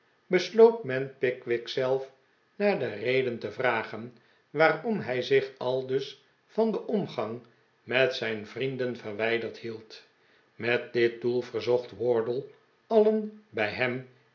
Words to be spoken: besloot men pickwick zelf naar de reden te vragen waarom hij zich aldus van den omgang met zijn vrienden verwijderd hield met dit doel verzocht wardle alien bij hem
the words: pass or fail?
pass